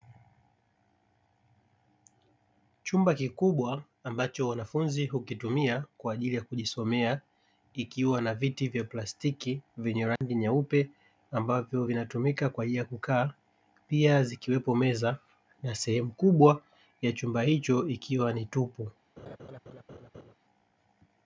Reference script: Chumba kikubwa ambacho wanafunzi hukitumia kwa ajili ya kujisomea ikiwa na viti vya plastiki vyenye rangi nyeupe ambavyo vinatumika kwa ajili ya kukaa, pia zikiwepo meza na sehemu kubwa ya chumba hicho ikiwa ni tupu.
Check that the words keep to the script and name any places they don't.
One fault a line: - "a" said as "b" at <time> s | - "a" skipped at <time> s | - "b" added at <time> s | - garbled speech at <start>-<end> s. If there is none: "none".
none